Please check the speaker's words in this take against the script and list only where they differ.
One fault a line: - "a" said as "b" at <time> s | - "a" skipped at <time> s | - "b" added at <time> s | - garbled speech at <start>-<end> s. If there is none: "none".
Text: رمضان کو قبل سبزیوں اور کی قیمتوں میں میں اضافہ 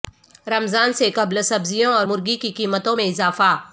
- "کو" said as "سے" at 0.9 s
- "مرغی" added at 2.0 s
- "میں" skipped at 3.0 s